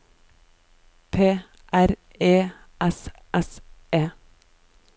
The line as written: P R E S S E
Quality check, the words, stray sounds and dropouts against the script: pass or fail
pass